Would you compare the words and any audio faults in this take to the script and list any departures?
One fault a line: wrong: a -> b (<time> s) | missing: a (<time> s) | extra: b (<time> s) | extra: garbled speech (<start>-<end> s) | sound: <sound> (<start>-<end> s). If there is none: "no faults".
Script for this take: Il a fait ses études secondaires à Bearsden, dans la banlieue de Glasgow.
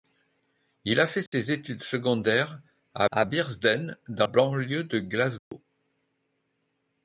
sound: dropout (1.3-1.3 s)
extra: à (3.1 s)
missing: la (4.3 s)
sound: dropout (5.4-5.5 s)